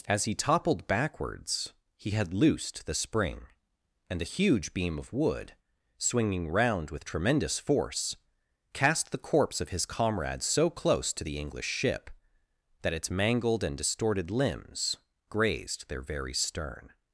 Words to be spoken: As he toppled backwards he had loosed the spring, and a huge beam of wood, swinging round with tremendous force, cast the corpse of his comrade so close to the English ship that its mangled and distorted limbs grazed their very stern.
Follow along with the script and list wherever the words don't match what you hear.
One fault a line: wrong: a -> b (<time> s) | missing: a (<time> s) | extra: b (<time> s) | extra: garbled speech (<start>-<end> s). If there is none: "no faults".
no faults